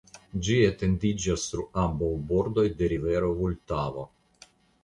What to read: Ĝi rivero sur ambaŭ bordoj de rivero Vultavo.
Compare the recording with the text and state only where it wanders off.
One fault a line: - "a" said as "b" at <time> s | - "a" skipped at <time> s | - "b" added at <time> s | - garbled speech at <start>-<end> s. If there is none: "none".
- "rivero" said as "etendiĝas" at 0.7 s